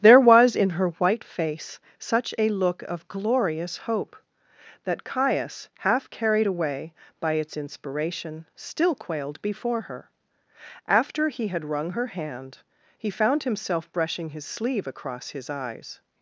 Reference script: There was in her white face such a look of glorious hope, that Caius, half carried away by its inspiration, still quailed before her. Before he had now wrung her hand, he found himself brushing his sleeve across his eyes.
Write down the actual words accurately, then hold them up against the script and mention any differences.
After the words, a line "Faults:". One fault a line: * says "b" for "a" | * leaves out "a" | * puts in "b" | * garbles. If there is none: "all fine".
There was in her white face such a look of glorious hope, that Caius, half carried away by its inspiration, still quailed before her. After he had wrung her hand, he found himself brushing his sleeve across his eyes.
Faults:
* says "After" for "Before"
* leaves out "now"